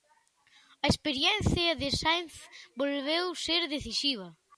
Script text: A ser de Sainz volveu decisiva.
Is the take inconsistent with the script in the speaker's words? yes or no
yes